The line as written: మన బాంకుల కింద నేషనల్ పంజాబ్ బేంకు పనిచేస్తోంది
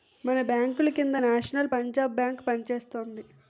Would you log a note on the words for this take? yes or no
no